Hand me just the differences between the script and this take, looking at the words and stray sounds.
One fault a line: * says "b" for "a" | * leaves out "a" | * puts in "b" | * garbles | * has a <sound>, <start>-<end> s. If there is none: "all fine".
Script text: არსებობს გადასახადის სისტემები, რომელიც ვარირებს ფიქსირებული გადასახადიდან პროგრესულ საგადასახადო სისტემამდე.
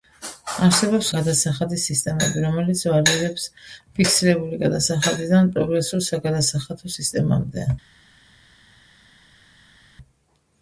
all fine